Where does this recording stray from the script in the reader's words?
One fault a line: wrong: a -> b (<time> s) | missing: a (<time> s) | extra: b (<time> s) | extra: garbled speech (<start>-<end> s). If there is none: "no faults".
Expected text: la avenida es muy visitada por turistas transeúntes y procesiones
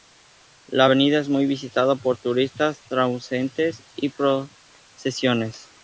no faults